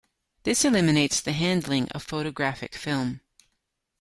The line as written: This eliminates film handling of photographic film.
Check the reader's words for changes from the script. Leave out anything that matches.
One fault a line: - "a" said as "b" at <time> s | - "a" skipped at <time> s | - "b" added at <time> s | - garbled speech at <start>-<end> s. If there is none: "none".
- "film" said as "the" at 1.2 s